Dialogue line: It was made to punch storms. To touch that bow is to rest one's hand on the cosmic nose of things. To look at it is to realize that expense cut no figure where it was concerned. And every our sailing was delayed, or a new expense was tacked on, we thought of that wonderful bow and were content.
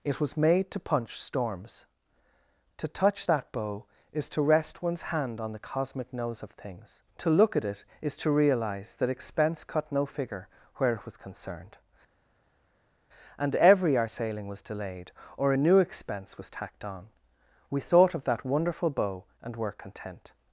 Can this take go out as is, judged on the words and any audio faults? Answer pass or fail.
pass